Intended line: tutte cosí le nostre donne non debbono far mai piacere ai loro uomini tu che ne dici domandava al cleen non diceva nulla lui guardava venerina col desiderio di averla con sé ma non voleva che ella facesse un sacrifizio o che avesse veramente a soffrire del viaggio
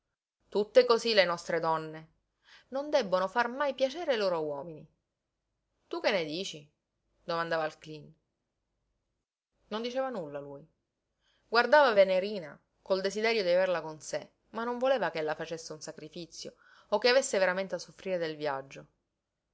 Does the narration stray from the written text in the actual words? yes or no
no